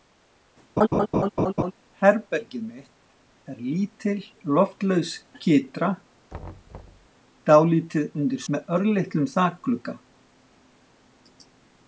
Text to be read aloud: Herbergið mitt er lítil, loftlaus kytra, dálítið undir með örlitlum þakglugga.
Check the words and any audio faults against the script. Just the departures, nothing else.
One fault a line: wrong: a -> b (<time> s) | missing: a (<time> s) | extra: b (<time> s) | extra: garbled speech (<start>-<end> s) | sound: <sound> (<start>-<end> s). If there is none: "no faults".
sound: laugh (0.8-1.7 s)
sound: thud (6.3-7.1 s)